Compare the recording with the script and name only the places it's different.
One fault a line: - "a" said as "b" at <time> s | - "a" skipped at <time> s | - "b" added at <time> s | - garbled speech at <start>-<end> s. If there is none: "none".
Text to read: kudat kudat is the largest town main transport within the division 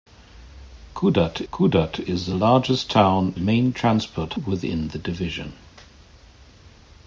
none